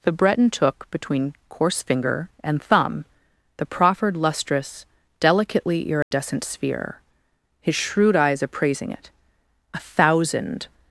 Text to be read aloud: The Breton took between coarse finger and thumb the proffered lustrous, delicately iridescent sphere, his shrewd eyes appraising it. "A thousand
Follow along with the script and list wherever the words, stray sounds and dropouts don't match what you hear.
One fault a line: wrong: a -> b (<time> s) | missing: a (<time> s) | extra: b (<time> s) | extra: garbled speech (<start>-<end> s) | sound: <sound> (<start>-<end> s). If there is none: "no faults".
sound: dropout (6.0-6.1 s)